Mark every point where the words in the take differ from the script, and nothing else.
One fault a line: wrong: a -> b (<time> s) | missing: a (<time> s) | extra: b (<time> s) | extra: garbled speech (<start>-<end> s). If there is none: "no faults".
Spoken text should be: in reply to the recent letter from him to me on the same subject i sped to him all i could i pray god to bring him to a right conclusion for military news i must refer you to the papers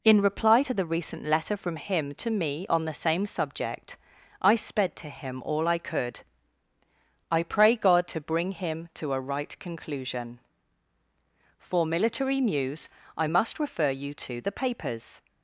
no faults